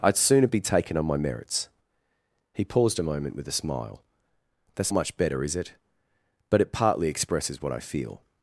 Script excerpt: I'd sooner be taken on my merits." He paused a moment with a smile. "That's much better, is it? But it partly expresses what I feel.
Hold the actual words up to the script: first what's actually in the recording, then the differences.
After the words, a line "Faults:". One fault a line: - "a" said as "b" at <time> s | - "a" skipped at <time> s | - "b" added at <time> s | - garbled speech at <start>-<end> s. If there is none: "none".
I'd sooner be taken on my merits." He paused a moment with a smile. "That's much better, is it? But it partly expresses what I feel.
Faults:
none